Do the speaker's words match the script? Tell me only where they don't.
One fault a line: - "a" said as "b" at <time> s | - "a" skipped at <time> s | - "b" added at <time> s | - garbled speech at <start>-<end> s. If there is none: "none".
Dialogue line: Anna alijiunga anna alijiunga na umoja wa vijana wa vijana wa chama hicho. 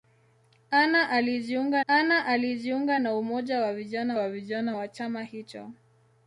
none